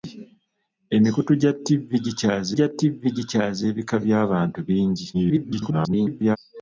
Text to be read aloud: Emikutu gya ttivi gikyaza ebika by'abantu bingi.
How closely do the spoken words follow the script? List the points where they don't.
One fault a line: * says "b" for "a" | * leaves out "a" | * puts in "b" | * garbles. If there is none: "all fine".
* puts in "gya ttivi gikyaza"
* garbles